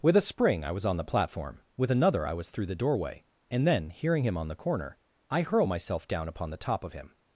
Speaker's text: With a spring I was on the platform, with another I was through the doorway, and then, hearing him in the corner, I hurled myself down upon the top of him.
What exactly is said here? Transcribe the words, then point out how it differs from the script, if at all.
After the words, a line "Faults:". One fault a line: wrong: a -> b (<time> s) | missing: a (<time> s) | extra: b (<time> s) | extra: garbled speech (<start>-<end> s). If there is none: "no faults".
With a spring I was on the platform, with another I was through the doorway, and then, hearing him on the corner, I hurl myself down upon the top of him.
Faults:
wrong: in -> on (4.3 s)
wrong: hurled -> hurl (5.4 s)